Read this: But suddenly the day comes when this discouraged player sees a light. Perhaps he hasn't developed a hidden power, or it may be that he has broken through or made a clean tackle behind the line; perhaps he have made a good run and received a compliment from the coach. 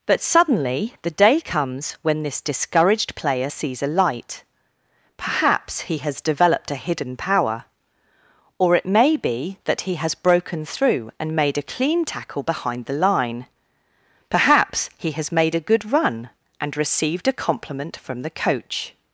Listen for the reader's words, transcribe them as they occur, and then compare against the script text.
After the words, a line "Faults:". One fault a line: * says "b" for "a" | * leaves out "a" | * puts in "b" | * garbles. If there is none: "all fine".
But suddenly the day comes when this discouraged player sees a light. Perhaps he has developed a hidden power, or it may be that he has broken through and made a clean tackle behind the line; perhaps he has made a good run and received a compliment from the coach.
Faults:
* says "has" for "hasn't"
* says "and" for "or"
* says "has" for "have"